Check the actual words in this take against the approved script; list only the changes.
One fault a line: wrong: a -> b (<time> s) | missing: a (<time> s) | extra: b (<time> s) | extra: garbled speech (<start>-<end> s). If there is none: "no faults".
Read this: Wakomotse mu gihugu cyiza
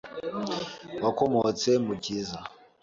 missing: gihugu (1.9 s)